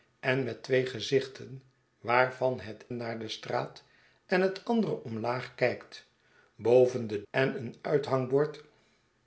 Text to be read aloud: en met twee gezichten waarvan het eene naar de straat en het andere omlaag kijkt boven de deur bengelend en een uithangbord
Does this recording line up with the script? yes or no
no